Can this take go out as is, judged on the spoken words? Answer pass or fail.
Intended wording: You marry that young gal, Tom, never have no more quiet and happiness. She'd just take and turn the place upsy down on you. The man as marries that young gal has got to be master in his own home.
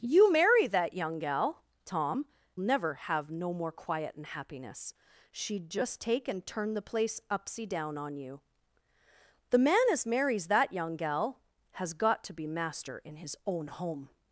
pass